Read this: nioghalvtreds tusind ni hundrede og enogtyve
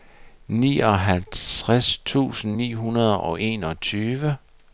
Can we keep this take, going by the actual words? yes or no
yes